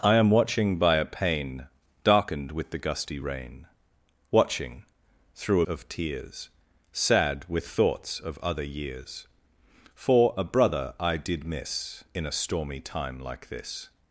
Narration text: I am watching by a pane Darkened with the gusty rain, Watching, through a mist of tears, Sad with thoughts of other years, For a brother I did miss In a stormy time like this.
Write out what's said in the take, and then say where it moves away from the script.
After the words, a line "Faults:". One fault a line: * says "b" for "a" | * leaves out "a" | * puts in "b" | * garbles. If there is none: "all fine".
I am watching by a pane Darkened with the gusty rain, Watching, through a of tears, Sad with thoughts of other years, For a brother I did miss In a stormy time like this.
Faults:
* leaves out "mist"